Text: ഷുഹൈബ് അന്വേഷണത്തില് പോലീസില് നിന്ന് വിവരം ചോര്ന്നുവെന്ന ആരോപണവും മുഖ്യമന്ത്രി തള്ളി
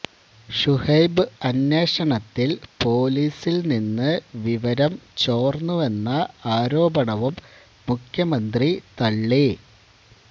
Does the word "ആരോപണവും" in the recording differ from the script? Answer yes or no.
no